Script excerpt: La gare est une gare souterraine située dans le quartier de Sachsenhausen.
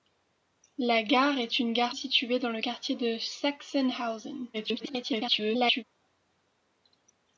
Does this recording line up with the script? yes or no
no